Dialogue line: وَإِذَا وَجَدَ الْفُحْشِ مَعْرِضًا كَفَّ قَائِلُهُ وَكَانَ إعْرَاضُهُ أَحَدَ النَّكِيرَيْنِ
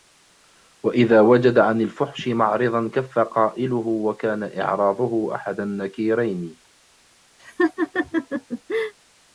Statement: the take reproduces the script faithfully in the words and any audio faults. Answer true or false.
false